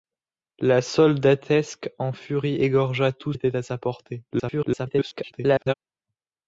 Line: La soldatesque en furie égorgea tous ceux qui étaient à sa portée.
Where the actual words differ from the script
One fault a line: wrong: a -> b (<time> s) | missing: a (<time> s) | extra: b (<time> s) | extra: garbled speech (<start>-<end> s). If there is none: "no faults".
missing: ceux qui (3.3 s)
extra: garbled speech (4.3-5.7 s)